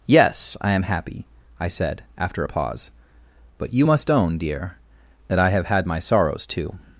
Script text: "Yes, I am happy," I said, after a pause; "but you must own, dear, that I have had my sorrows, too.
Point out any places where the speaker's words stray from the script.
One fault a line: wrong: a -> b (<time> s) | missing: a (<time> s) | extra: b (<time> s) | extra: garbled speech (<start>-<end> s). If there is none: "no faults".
no faults